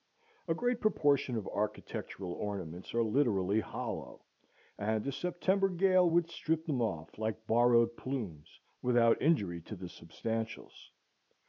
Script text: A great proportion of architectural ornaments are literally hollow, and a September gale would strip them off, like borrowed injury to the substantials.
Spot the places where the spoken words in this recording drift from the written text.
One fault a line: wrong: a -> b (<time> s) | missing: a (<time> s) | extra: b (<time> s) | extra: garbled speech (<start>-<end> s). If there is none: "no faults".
extra: plumes without (8.0 s)